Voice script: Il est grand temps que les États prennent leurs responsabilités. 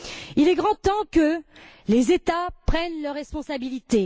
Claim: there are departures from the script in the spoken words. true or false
false